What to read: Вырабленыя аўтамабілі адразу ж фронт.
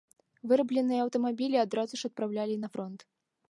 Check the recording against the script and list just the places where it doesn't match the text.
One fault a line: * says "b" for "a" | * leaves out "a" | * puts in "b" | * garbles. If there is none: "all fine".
* puts in "адпраўлялі на"